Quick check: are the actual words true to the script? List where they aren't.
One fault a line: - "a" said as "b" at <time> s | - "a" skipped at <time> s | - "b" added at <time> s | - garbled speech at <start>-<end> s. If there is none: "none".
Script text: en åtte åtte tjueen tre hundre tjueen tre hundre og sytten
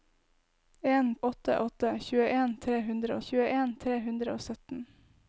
none